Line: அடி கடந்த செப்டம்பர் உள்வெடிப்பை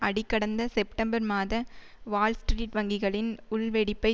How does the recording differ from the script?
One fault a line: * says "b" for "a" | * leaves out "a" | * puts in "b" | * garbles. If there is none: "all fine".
* puts in "மாத வால்ஸ்ட்ரீட் வங்கிகளின்"